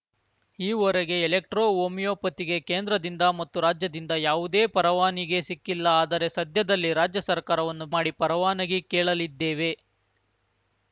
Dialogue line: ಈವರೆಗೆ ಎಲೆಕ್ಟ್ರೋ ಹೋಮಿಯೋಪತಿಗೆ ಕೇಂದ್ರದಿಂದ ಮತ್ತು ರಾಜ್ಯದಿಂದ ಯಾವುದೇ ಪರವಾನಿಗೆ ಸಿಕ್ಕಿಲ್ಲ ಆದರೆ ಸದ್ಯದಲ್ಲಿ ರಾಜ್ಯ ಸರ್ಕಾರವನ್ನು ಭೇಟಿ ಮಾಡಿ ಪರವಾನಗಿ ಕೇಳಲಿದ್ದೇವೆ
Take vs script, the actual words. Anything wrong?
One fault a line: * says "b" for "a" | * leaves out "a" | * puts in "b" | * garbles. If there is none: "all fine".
* leaves out "ಭೇಟಿ"